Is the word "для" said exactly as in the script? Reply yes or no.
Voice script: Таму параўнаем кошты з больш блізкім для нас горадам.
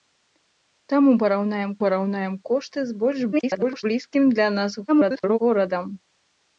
yes